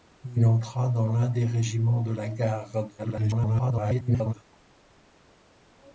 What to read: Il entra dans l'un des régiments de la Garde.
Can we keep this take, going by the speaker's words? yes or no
no